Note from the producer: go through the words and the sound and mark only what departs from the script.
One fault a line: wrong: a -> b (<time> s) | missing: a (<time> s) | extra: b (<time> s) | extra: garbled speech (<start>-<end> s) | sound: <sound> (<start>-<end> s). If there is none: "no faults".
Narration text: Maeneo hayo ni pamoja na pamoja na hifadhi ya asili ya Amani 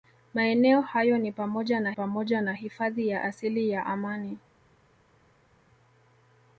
no faults